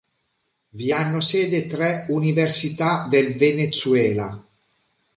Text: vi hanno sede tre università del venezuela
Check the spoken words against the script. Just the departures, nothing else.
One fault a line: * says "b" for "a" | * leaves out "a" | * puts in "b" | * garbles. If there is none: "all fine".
all fine